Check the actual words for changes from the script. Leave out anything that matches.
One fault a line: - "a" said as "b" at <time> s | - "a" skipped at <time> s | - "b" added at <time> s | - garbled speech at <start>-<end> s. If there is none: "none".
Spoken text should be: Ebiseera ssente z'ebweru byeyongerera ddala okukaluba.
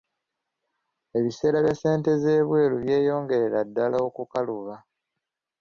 - "bya" added at 1.6 s